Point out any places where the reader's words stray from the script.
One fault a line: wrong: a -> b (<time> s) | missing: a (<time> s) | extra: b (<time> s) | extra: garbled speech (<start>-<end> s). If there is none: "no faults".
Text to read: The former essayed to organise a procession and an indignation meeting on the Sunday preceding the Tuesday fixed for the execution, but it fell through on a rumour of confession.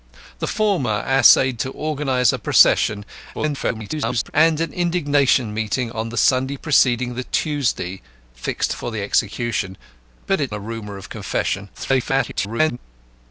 extra: garbled speech (3.3-4.3 s)
missing: fell through on (10.5 s)
extra: garbled speech (11.7-12.8 s)